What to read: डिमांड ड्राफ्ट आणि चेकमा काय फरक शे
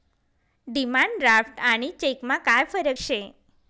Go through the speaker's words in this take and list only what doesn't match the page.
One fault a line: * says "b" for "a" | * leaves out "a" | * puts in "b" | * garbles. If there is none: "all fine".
all fine